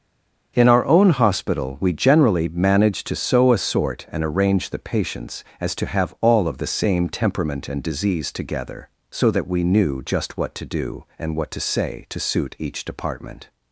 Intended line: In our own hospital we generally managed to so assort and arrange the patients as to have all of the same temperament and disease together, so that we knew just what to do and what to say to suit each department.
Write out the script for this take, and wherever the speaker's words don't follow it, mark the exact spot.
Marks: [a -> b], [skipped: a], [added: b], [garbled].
In our own hospital we generally managed to so assort and arrange the patients as to have all of the same temperament and disease together, so that we knew just what to do and what to say to suit each department.